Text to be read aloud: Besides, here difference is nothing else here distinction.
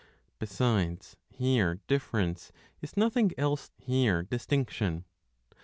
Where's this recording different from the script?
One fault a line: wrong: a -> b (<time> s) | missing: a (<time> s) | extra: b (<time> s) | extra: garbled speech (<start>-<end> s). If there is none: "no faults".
no faults